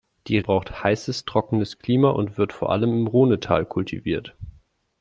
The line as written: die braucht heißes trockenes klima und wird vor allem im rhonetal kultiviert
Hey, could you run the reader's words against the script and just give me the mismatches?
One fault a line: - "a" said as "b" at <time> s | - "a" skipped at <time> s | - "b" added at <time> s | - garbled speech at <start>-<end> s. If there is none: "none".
none